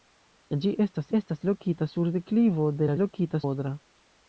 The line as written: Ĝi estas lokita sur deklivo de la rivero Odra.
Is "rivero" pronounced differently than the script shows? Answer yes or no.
yes